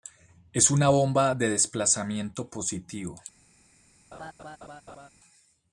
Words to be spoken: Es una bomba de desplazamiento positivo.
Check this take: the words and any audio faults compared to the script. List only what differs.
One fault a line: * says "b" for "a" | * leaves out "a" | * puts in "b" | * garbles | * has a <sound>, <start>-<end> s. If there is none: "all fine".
* has a laugh, 4.1-5.1 s